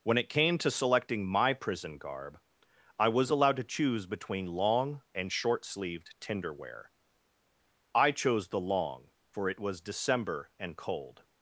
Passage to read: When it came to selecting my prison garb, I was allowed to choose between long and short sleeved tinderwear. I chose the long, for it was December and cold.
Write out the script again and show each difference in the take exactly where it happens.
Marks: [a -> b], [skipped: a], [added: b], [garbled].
When it came to selecting my prison garb, I was allowed to choose between long and short sleeved tinderwear. I chose the long, for it was December and cold.